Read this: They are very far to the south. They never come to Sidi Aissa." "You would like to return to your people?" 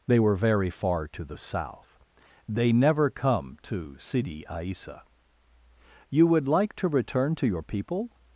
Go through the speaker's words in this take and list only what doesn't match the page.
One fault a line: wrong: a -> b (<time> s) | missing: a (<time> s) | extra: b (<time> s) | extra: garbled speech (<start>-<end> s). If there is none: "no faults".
wrong: are -> were (0.2 s)